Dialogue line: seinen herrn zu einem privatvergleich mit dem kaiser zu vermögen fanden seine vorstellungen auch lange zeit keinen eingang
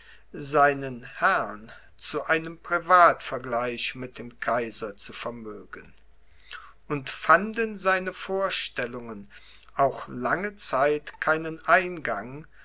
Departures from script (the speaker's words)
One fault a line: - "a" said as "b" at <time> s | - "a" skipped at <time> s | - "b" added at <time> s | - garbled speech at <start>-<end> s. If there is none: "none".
- "und" added at 6.9 s